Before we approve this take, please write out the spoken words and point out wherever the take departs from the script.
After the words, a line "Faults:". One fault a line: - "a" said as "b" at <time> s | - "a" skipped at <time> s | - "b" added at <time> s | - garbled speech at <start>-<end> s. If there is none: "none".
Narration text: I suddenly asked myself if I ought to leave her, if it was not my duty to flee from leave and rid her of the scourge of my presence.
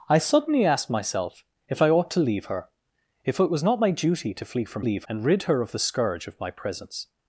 I suddenly asked myself if I ought to leave her, if it was not my duty to flee from leave and rid her of the scourge of my presence.
Faults:
none